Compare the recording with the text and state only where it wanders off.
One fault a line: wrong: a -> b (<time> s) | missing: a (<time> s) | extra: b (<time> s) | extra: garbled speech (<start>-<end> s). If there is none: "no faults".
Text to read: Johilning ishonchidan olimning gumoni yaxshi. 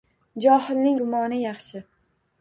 missing: ishonchidan olimning (0.9 s)